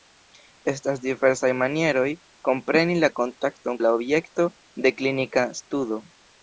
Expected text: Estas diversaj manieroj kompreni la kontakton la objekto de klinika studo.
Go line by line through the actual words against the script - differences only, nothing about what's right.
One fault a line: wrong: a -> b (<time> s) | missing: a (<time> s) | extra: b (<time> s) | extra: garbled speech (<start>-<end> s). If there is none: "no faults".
no faults